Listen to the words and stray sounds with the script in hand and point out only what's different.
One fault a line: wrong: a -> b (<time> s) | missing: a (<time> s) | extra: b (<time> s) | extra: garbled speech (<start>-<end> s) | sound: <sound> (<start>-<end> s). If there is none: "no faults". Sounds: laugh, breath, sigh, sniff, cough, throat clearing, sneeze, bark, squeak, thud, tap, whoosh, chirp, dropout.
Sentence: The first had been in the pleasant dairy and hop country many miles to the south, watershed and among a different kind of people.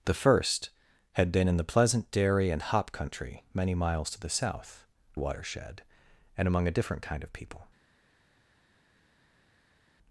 no faults